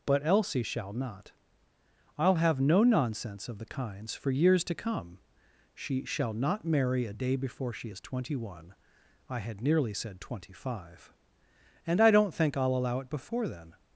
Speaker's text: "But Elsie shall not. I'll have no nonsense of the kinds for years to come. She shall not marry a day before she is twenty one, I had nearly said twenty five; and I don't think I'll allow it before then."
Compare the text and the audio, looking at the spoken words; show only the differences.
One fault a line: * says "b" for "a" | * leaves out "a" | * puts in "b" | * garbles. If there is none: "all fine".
all fine